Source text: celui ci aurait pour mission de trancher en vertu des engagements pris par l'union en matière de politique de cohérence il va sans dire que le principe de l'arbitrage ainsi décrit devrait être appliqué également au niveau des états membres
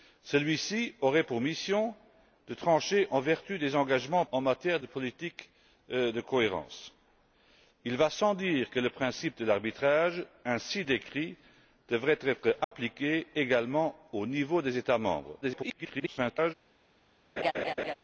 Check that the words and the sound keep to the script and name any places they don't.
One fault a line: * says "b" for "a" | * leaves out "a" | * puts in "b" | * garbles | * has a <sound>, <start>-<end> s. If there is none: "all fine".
* leaves out "pris par l'union"
* has a dropout, 12.6-12.7 s
* garbles
* has a laugh, 17.4-17.9 s